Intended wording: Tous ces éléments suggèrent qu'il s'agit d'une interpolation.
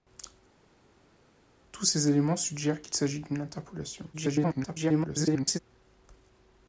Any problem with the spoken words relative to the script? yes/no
yes